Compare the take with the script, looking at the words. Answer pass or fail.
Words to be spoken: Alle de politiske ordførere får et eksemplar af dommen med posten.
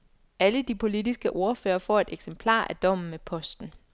pass